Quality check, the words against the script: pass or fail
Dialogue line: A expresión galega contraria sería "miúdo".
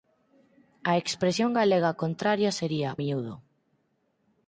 pass